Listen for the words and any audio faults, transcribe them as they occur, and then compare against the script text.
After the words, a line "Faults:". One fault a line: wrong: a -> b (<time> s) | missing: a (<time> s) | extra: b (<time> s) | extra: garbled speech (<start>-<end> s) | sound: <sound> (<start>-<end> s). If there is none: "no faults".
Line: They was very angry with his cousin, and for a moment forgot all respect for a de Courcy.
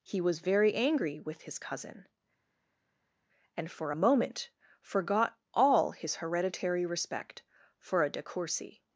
He was very angry with his cousin, and for a moment forgot all his hereditary respect for a de Courcy.
Faults:
wrong: They -> He (0.0 s)
extra: his hereditary (5.9 s)